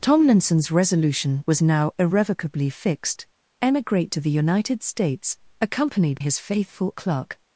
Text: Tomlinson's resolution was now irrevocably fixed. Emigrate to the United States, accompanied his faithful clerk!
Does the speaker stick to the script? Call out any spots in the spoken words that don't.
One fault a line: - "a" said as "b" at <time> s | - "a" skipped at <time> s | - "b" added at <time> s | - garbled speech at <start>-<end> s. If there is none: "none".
none